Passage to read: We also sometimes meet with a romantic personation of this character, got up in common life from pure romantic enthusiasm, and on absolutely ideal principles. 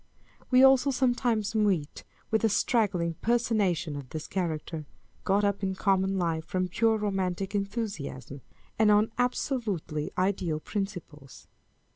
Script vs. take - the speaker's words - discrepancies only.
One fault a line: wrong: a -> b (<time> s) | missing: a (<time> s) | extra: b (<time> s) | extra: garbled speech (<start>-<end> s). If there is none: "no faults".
wrong: romantic -> straggling (2.5 s)